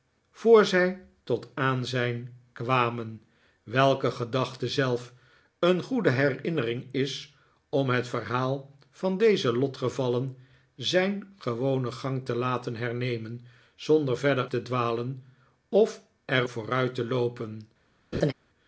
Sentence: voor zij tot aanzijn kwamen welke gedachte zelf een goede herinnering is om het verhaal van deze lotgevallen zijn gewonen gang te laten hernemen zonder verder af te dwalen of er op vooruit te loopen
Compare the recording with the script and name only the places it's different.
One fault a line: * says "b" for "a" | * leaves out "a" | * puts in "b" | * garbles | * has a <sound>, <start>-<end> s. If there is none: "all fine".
* leaves out "af"
* leaves out "op"
* has a laugh, 18.1-18.3 s